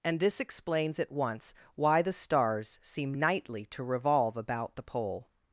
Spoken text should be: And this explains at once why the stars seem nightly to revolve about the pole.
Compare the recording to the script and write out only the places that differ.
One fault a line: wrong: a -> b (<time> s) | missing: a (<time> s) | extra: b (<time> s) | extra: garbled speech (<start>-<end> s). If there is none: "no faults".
no faults